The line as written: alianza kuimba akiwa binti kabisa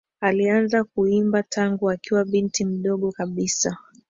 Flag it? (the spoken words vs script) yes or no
yes